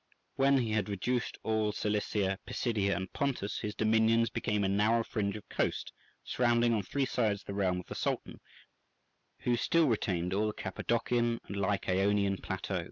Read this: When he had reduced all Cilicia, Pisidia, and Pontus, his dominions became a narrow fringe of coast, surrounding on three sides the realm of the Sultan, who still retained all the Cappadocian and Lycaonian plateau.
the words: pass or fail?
pass